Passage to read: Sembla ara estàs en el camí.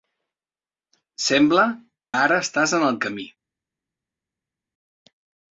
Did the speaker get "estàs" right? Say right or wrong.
right